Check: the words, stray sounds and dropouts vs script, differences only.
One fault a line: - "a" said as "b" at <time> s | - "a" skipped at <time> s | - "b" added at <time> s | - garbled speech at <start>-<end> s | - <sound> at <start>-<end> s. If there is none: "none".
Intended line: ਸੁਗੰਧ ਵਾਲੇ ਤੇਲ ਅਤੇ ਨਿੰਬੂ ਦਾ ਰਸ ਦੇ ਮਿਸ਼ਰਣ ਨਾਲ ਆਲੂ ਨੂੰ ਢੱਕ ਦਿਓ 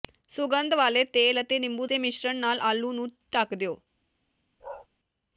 - "ਦਾ ਰਸ" skipped at 1.9 s
- bark at 4.6-4.9 s